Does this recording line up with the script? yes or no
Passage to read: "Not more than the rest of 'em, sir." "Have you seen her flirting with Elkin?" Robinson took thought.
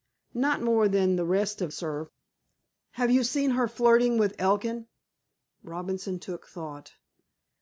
no